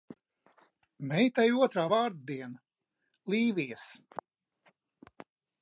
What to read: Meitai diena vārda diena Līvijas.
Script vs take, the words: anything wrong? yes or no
yes